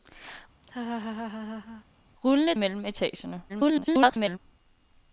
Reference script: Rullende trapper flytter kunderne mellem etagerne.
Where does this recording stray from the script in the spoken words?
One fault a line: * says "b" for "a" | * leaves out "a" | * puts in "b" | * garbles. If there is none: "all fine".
* leaves out "trapper flytter kunderne"
* garbles